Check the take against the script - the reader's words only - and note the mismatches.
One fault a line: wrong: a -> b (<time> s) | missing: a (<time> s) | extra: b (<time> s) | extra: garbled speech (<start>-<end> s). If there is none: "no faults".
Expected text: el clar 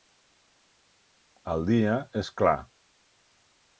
extra: dia és (1.7 s)